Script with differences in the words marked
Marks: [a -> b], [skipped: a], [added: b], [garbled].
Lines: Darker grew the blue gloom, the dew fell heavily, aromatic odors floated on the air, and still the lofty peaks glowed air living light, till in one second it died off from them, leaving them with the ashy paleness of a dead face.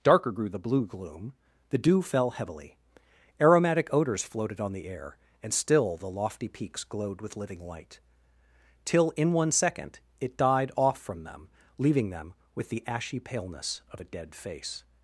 Darker grew the blue gloom, the dew fell heavily, aromatic odors floated on the air, and still the lofty peaks glowed [air -> with] living light, till in one second it died off from them, leaving them with the ashy paleness of a dead face.